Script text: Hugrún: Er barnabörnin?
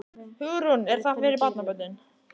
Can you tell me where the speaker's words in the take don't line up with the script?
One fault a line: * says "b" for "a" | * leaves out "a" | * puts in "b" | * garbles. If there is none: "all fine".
* puts in "það fyrir"